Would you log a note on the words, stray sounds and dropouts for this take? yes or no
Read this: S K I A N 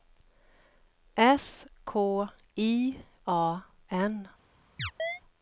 yes